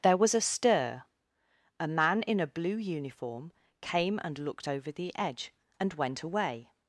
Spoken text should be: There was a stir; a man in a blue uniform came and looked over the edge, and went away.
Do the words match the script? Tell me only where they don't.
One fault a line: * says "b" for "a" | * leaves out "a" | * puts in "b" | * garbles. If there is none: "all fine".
all fine